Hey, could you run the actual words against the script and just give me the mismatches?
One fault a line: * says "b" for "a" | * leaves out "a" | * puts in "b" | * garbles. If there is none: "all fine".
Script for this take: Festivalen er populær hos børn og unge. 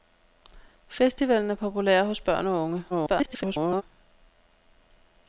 * garbles